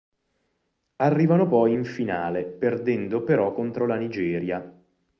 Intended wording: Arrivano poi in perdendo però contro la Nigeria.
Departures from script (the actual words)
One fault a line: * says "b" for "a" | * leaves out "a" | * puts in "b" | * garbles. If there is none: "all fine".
* puts in "finale"